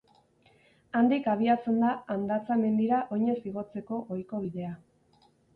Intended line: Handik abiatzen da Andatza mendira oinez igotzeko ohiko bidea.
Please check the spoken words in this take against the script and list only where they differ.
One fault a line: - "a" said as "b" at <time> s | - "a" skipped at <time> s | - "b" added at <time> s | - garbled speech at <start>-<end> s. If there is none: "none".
none